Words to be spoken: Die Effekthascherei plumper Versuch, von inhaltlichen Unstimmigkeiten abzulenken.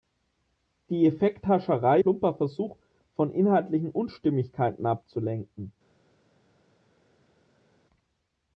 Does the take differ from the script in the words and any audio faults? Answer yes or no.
no